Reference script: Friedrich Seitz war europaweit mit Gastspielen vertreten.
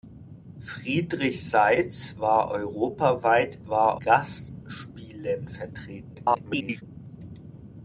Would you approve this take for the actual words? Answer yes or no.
no